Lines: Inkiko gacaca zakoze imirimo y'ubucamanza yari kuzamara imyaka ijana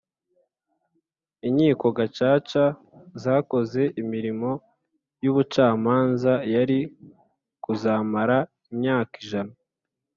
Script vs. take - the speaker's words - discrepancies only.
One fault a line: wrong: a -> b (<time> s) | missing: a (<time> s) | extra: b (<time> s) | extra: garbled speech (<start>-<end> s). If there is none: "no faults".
no faults